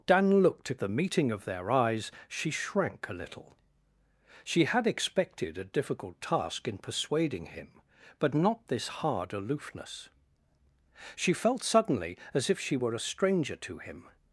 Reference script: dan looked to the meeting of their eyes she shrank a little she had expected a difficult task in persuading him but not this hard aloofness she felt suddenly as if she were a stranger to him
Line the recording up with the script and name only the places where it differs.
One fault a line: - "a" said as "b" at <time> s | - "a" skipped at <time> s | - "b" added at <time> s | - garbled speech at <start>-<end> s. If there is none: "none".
none